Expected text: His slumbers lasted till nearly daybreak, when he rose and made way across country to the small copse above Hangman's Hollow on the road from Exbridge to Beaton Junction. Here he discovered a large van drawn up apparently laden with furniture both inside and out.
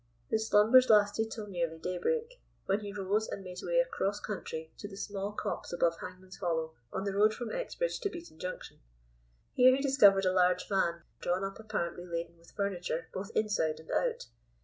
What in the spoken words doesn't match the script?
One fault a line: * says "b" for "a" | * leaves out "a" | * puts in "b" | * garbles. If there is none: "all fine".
all fine